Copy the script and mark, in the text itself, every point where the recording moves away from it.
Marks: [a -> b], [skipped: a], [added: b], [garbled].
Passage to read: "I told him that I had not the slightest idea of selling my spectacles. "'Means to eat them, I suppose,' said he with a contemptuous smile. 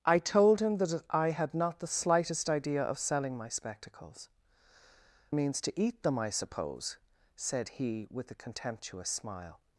"I told him that I had not the slightest idea of selling my spectacles. "'Means to eat them, I suppose,' said he with a contemptuous smile.